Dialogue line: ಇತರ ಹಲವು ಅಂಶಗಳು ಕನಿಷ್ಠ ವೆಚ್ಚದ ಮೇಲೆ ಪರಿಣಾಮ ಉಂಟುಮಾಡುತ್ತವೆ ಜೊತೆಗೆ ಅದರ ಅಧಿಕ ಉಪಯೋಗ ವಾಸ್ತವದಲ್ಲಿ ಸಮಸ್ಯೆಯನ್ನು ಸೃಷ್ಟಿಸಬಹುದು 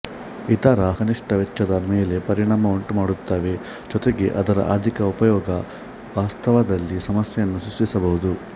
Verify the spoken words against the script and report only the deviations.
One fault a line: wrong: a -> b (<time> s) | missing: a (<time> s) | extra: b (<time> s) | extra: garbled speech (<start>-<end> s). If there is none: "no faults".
missing: ಹಲವು ಅಂಶಗಳು (0.9 s)